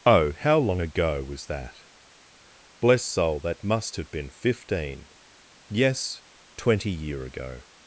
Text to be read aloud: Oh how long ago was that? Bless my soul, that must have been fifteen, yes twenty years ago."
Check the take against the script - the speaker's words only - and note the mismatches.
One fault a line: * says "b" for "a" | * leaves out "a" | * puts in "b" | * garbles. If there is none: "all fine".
* leaves out "my"
* says "year" for "years"